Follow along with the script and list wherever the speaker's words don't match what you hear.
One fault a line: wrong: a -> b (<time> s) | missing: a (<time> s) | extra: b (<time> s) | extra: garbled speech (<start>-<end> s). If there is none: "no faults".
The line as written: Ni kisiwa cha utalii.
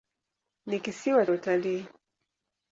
missing: cha (1.2 s)